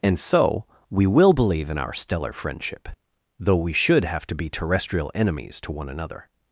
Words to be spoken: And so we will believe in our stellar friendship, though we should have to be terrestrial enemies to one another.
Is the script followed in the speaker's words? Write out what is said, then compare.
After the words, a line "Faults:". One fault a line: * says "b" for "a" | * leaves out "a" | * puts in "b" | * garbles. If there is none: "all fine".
And so we will believe in our stellar friendship, though we should have to be terrestrial enemies to one another.
Faults:
all fine